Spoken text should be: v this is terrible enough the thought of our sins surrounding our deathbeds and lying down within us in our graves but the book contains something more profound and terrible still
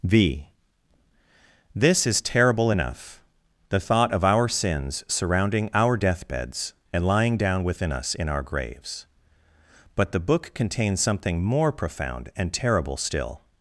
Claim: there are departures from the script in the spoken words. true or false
false